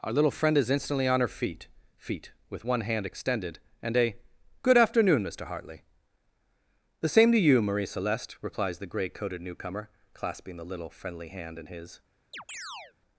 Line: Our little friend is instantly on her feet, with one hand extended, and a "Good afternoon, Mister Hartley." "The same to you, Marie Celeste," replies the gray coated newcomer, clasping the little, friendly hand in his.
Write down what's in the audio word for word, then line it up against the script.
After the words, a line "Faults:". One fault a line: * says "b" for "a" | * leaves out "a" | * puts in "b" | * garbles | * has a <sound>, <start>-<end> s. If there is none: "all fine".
Our little friend is instantly on her feet feet, with one hand extended, and a "Good afternoon, Mister Hartley." "The same to you, Marie Celeste," replies the gray coated newcomer, clasping the little, friendly hand in his.
Faults:
* puts in "feet"
* has a chirp, 12.3-12.9 s